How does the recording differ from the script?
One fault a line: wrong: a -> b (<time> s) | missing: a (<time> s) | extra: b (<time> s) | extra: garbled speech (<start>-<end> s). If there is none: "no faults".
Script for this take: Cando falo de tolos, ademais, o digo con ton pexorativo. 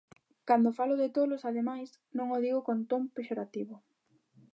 extra: non (2.2 s)